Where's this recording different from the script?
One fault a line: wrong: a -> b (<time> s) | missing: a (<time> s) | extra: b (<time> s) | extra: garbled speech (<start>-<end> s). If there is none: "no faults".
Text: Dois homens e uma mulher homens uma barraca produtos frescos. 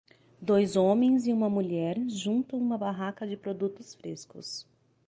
wrong: homens -> juntam (2.1 s)
extra: de (3.3 s)